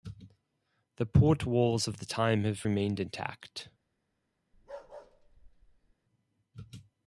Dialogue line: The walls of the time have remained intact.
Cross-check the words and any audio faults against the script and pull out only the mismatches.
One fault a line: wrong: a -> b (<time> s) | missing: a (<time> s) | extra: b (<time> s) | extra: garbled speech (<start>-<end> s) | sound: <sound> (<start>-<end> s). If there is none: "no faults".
extra: port (1.1 s)
sound: bark (4.5-5.9 s)